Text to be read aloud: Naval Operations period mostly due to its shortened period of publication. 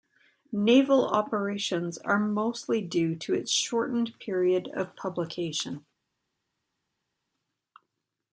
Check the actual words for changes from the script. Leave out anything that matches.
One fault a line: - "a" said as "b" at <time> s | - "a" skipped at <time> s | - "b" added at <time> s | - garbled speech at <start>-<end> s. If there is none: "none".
- "period" said as "are" at 2.0 s